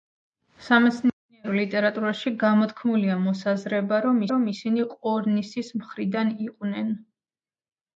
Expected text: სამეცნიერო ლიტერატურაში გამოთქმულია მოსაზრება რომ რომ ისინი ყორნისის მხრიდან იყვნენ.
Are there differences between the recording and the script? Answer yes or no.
no